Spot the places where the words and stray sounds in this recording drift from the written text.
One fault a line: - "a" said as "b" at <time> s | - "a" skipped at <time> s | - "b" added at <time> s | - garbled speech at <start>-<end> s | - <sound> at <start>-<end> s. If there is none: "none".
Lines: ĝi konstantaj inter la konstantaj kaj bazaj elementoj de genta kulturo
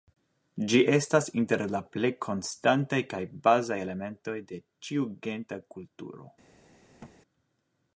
- "konstantaj" said as "estas" at 0.9 s
- "plej" added at 2.0 s
- "ĉiu" added at 4.9 s
- thud at 7.0-7.2 s